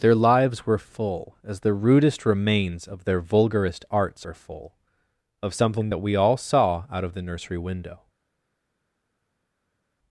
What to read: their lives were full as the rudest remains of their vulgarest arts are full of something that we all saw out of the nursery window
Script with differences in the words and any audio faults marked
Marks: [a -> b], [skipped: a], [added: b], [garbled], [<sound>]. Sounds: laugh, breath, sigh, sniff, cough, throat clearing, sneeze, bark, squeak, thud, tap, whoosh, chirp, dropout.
their lives were full as the rudest remains of their vulgarest arts are full of something that we all saw out of the nursery window